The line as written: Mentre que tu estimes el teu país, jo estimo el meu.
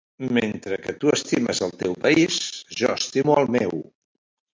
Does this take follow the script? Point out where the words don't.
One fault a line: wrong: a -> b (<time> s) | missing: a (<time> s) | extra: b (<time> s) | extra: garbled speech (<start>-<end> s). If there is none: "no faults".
no faults